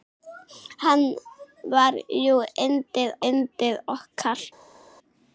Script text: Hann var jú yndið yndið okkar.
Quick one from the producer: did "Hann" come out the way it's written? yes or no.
yes